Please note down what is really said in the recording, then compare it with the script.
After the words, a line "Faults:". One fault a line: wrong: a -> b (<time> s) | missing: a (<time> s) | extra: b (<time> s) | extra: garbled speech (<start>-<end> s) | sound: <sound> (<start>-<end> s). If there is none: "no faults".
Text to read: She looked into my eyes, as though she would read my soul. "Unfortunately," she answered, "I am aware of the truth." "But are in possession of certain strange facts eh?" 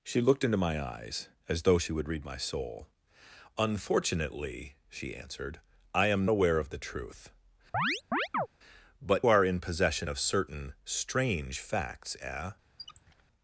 She looked into my eyes, as though she would read my soul. "Unfortunately," she answered, "I am aware of the truth." "But are in possession of certain strange facts eh?"
Faults:
sound: chirp (7.7-8.5 s)
sound: squeak (12.8-13.2 s)